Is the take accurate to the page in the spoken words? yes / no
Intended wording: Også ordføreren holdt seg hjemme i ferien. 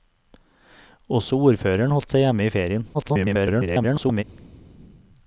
no